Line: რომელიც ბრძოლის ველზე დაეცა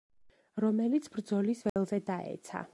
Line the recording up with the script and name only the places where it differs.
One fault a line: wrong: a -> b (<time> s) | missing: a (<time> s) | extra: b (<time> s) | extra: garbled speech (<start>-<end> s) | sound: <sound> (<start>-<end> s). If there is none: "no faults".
sound: dropout (1.7-1.8 s)